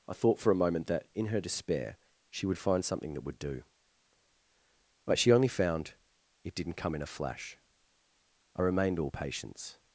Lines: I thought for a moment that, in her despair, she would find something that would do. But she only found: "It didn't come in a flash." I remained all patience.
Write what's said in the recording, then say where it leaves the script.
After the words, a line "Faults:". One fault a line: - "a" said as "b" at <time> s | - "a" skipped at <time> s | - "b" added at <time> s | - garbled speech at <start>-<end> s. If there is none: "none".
I thought for a moment that, in her despair, she would find something that would do. But she only found: "It didn't come in a flash." I remained all patience.
Faults:
none